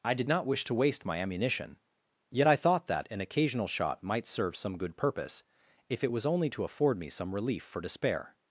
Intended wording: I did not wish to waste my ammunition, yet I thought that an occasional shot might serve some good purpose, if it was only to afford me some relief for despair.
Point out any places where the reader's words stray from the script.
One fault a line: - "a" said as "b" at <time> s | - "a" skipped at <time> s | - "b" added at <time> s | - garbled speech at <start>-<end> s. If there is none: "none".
none